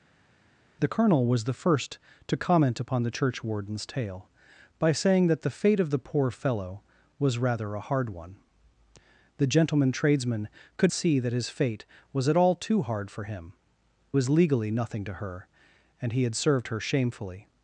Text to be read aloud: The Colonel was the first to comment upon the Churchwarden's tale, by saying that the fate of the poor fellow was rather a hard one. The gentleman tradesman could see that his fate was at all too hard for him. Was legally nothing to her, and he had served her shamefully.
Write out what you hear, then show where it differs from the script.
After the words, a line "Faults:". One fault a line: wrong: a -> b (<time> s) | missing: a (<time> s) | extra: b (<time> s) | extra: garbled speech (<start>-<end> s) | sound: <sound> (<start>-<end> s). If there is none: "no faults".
The Colonel was the first to comment upon the Churchwarden's tale, by saying that the fate of the poor fellow was rather a hard one. The gentleman tradesman could see that his fate was at all too hard for him. Was legally nothing to her, and he had served her shamefully.
Faults:
no faults